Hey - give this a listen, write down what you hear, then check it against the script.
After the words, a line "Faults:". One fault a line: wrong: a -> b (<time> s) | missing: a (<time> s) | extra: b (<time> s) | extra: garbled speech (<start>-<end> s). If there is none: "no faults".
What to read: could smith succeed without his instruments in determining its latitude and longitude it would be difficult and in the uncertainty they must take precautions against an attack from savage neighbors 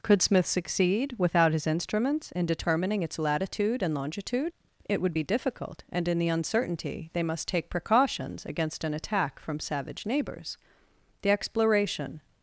could smith succeed without his instruments in determining its latitude and longitude it would be difficult and in the uncertainty they must take precautions against an attack from savage neighbors the exploration
Faults:
extra: the exploration (11.2 s)